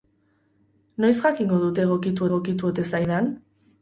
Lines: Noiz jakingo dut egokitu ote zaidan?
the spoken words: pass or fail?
fail